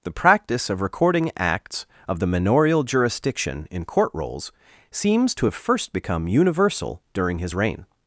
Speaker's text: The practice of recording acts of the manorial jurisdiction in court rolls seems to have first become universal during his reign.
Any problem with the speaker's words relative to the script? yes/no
no